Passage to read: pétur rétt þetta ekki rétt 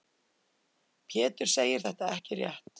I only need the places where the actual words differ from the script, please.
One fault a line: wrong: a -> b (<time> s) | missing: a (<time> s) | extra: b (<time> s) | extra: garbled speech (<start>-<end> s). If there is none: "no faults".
wrong: rétt -> segir (1.6 s)